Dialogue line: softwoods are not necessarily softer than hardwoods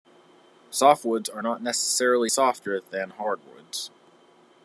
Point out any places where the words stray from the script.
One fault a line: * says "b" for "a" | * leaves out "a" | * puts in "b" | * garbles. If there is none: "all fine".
all fine